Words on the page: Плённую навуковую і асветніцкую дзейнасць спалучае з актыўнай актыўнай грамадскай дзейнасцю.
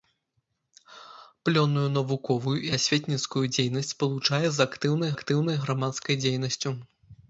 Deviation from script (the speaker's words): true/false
false